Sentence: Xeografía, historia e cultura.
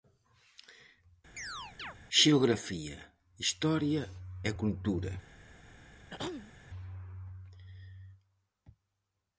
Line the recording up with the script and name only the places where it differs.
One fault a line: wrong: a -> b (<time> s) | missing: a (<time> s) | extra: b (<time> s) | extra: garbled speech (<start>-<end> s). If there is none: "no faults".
no faults